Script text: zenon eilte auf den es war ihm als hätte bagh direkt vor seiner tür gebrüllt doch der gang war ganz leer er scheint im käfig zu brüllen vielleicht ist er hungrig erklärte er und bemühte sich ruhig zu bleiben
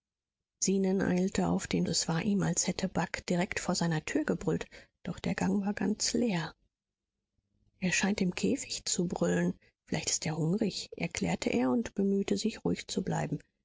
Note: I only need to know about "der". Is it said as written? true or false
true